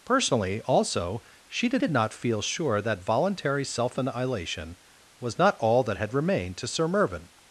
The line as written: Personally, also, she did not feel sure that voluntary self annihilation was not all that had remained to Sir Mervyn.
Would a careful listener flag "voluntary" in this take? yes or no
no